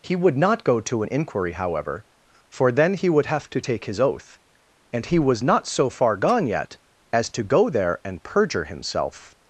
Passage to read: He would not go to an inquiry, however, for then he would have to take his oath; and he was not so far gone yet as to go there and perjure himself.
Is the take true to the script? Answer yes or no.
yes